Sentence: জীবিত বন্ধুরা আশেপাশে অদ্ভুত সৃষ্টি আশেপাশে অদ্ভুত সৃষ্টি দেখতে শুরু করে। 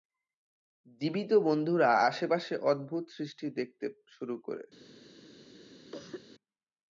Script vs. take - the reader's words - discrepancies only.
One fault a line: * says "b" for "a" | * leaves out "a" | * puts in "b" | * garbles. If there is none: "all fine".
* leaves out "আশেপাশে অদ্ভুত সৃষ্টি"